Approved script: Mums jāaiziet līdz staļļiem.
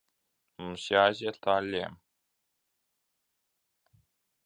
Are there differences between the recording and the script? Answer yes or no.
yes